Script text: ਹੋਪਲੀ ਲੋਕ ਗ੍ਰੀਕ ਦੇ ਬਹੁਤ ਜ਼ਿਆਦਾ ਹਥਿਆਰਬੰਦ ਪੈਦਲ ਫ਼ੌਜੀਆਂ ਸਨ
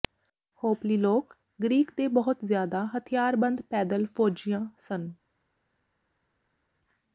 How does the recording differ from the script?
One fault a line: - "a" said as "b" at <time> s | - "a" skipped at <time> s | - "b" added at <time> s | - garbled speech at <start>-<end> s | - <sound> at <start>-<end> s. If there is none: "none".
none